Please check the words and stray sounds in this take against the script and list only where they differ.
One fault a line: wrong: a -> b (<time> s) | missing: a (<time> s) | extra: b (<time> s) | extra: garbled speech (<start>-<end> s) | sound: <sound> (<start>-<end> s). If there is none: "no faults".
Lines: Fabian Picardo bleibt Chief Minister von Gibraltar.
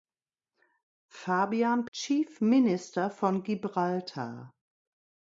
missing: Picardo bleibt (1.9 s)